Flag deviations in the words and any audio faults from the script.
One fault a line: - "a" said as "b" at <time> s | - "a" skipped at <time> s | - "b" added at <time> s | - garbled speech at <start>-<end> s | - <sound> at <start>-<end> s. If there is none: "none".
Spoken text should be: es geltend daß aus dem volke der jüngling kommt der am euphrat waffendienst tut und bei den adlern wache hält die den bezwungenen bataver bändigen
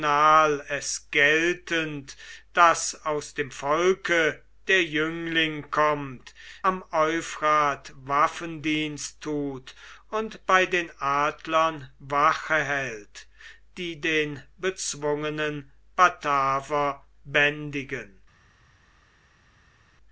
- "der" skipped at 6.3 s